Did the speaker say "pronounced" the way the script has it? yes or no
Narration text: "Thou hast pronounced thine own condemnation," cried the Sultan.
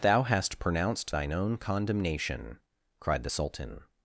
yes